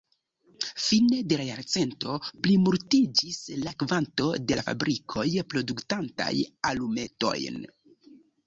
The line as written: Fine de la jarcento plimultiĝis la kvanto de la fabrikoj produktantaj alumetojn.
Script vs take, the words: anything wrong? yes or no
no